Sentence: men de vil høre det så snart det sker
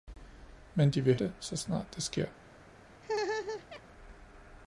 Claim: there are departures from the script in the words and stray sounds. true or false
true